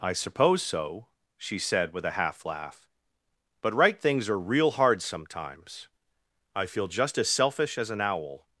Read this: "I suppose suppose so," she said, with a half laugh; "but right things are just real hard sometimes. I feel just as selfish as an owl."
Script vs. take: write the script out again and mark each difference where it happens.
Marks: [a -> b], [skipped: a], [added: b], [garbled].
"I suppose [skipped: suppose] so," she said, with a half laugh; "but right things are [skipped: just] real hard sometimes. I feel just as selfish as an owl."